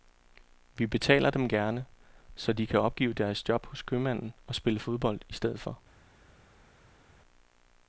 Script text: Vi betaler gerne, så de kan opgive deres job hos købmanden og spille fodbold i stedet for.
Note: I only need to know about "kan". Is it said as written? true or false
true